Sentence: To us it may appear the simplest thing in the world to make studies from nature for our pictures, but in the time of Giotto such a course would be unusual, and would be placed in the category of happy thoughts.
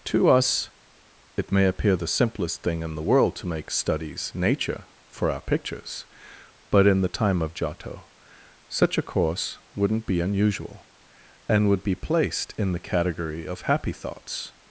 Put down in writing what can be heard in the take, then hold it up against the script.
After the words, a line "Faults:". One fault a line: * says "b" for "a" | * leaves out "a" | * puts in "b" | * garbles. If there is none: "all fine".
To us it may appear the simplest thing in the world to make studies nature for our pictures, but in the time of Giotto such a course wouldn't be unusual, and would be placed in the category of happy thoughts.
Faults:
* leaves out "from"
* says "wouldn't" for "would"